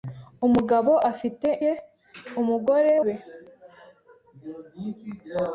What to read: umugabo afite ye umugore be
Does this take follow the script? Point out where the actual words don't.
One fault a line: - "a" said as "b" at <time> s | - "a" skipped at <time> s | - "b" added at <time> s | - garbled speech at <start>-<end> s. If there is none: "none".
none